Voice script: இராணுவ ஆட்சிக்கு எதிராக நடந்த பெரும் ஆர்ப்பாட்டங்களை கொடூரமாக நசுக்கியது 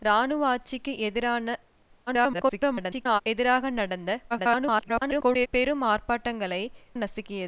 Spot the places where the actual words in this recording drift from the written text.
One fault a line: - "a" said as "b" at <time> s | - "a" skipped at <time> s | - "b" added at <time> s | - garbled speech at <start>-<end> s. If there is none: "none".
- garbled speech at 2.1-3.2 s
- garbled speech at 4.3-5.5 s
- "கொடூரமாக" skipped at 6.6 s